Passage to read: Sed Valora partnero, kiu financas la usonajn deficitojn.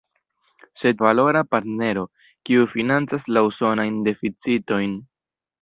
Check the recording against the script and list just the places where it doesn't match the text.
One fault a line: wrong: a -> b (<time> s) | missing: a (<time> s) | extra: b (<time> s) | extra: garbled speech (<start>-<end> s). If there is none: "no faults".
no faults